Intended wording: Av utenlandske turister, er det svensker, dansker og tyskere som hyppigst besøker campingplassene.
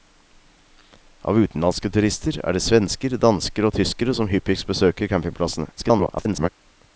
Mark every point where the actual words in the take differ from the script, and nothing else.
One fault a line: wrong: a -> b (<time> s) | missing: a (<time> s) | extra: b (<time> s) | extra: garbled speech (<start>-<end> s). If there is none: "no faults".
extra: garbled speech (5.8-6.5 s)